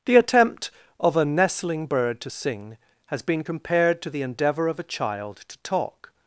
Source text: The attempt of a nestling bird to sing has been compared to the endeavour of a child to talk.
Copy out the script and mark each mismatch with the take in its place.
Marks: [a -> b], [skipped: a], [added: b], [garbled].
The attempt of a nestling bird to sing has been compared to the endeavour of a child to talk.